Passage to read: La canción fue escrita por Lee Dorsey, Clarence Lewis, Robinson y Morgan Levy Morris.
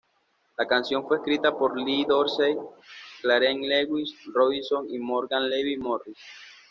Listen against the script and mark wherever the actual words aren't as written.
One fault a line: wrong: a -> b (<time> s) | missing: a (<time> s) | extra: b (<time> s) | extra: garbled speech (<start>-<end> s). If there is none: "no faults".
no faults